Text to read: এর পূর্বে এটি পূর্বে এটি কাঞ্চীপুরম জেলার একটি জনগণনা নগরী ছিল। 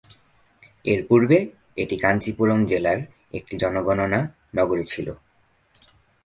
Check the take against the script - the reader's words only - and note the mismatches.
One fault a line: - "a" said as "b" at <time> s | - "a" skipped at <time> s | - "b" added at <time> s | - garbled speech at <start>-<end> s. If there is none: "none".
- "পূর্বে এটি" skipped at 2.0 s